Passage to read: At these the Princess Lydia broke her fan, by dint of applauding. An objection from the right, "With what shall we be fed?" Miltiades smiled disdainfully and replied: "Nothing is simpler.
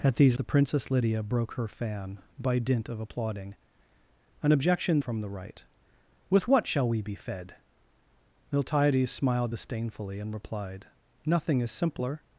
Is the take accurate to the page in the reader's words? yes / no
yes